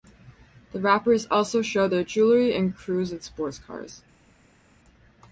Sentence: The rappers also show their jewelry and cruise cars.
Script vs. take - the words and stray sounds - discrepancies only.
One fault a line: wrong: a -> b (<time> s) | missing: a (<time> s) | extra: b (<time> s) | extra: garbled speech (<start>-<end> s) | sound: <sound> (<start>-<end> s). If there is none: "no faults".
extra: in sports (3.1 s)